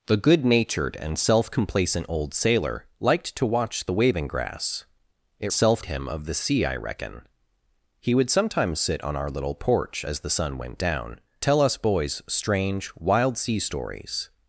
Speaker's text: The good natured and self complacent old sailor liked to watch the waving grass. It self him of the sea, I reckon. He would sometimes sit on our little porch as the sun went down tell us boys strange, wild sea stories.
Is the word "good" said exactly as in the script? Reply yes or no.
yes